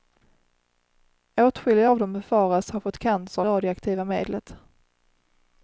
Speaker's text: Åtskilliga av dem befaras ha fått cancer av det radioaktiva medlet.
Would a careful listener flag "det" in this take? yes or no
yes